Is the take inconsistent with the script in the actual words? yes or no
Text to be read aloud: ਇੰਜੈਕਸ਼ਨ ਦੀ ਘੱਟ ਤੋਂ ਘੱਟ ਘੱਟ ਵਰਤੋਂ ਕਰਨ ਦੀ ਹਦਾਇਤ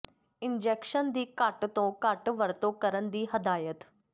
yes